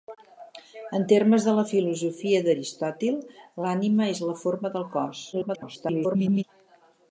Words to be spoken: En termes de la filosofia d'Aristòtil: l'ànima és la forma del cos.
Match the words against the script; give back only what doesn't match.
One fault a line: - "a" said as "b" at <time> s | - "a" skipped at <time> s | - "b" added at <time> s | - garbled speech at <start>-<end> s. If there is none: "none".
- garbled speech at 5.3-6.4 s